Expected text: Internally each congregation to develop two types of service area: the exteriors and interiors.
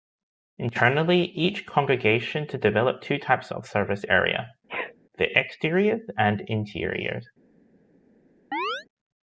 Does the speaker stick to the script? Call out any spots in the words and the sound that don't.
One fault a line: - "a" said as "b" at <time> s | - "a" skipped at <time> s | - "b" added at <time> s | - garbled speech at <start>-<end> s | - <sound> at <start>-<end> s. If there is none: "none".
- sneeze at 4.7-5.0 s
- chirp at 8.5-8.9 s